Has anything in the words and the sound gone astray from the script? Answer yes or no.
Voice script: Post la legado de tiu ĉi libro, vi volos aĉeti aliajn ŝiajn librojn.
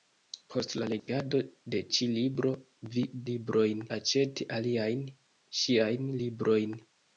yes